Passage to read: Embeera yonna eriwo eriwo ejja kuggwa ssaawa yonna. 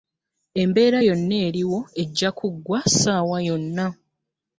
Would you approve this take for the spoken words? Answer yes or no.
no